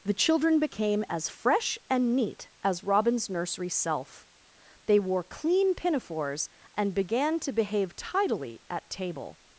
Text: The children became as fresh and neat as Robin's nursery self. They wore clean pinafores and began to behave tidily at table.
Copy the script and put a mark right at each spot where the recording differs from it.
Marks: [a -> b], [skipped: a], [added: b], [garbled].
The children became as fresh and neat as Robin's nursery self. They wore clean pinafores and began to behave tidily at table.